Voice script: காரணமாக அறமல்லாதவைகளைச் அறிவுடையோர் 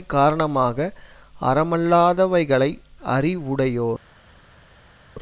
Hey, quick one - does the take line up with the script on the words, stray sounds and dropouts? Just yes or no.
yes